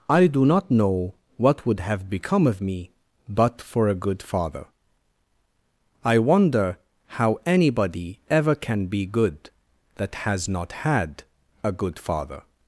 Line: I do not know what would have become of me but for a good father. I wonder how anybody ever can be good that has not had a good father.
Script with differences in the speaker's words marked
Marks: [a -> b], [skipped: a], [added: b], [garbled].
I do not know what would have become of me but for a good father. I wonder how anybody ever can be good that has not had a good father.